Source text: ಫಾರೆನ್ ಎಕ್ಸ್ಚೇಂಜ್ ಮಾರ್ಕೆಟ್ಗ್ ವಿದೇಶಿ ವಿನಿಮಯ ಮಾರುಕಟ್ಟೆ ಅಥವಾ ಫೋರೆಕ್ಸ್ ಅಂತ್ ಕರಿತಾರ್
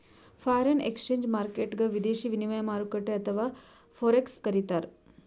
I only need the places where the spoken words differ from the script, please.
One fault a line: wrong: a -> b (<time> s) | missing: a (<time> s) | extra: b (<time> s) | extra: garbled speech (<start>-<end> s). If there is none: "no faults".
missing: ಅಂತ್ (4.4 s)